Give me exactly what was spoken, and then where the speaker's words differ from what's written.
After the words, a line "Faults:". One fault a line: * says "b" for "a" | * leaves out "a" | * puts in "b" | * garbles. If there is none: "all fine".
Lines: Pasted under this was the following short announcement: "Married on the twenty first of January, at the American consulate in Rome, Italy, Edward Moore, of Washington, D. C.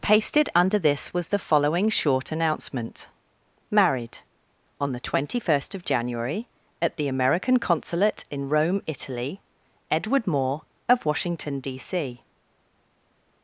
Pasted under this was the following short announcement: "Married on the twenty first of January, at the American consulate in Rome, Italy, Edward Moore, of Washington, D. C.
Faults:
all fine